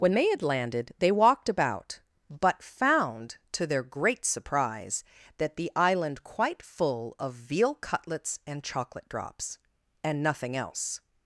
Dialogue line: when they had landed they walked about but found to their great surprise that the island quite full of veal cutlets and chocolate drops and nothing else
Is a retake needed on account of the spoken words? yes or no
no